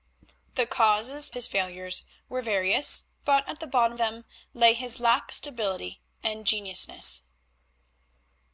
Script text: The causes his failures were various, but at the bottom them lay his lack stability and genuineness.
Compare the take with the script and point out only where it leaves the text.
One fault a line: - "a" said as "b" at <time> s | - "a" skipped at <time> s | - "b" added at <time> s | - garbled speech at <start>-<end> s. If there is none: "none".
none